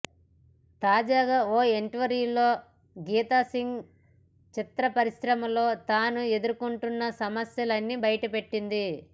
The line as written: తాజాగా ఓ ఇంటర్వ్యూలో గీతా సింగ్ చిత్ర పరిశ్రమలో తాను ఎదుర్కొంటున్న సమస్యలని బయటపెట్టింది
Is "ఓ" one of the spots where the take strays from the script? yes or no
no